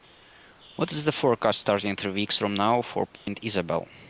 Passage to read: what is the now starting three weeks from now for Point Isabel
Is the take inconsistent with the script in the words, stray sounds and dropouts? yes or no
yes